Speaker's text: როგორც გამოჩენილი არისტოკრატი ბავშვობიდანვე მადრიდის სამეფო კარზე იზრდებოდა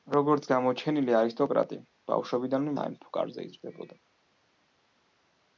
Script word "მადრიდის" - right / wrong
wrong